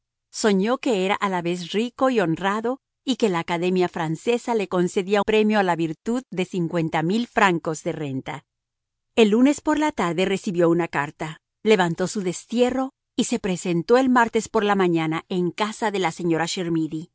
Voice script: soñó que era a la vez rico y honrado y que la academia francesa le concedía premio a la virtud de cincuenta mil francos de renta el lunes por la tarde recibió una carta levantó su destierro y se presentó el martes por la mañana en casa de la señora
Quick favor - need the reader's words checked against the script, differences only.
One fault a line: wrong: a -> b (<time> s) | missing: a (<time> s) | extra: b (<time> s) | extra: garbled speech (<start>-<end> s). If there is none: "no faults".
no faults